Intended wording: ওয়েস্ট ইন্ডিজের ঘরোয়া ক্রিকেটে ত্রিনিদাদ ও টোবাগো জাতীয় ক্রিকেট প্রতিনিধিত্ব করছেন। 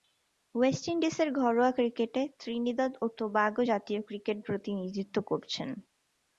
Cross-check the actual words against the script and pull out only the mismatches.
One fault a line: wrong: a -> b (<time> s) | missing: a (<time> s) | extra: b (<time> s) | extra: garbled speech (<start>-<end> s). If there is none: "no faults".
no faults